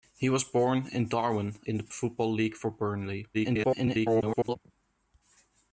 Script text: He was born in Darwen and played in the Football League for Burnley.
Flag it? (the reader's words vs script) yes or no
yes